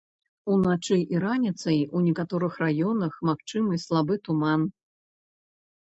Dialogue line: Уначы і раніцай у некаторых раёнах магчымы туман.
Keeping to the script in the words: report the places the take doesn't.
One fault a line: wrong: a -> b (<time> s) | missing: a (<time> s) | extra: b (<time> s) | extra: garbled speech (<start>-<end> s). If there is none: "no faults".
extra: слабы (3.9 s)